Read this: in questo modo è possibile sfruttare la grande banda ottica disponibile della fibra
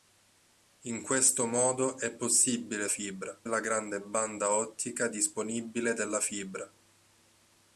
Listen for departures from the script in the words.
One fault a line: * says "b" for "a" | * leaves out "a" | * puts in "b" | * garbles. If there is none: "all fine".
* says "fibra" for "sfruttare"